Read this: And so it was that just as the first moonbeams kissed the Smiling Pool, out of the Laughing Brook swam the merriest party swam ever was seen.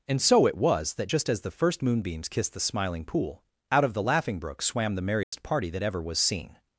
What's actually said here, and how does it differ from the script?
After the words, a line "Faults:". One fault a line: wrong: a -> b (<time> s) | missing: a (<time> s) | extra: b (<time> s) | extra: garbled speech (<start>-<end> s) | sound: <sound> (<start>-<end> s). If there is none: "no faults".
And so it was that just as the first moonbeams kissed the Smiling Pool, out of the Laughing Brook swam the merriest party that ever was seen.
Faults:
sound: dropout (5.2-5.3 s)
wrong: swam -> that (5.7 s)